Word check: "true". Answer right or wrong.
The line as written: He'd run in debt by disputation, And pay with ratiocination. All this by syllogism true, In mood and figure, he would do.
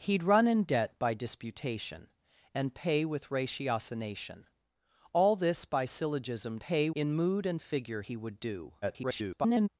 wrong